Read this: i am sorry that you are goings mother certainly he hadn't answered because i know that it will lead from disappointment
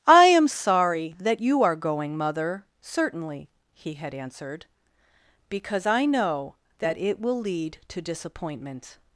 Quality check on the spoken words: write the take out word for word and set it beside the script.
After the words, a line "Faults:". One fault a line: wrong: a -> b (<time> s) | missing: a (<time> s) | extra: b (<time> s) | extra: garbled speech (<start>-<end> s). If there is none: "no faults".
i am sorry that you are going mother certainly he had answered because i know that it will lead to disappointment
Faults:
wrong: goings -> going (1.8 s)
wrong: hadn't -> had (3.9 s)
wrong: from -> to (7.9 s)